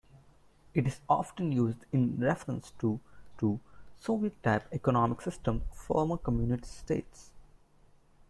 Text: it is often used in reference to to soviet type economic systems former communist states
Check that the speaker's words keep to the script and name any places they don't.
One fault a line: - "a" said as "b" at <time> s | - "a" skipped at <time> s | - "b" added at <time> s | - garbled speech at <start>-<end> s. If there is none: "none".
none